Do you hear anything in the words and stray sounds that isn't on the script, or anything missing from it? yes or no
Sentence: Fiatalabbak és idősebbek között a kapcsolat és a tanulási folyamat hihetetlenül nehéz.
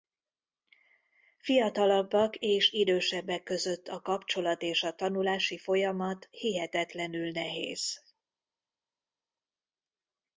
no